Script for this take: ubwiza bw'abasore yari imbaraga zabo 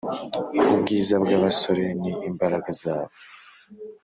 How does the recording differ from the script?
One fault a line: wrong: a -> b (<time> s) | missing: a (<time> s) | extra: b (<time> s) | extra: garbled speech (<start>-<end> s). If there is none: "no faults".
wrong: yari -> ni (2.0 s)